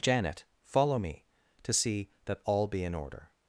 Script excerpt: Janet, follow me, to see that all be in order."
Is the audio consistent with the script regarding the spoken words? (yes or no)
yes